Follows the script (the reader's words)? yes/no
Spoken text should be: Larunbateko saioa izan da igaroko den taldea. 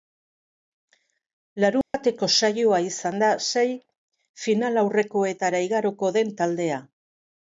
no